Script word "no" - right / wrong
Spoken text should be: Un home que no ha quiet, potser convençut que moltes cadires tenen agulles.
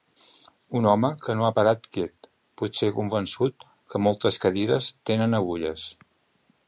right